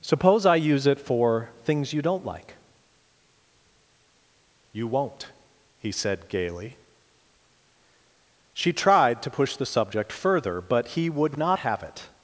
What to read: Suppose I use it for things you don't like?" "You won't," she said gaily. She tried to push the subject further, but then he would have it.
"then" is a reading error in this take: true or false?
true